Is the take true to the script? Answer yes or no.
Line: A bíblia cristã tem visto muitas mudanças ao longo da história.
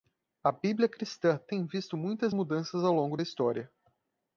yes